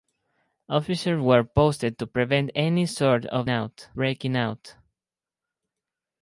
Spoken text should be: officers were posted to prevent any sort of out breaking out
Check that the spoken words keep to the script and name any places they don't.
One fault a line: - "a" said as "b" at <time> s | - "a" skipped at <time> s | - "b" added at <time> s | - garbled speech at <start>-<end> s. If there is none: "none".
none